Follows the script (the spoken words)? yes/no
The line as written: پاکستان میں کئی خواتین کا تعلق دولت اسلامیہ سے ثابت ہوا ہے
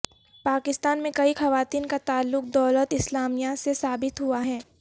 yes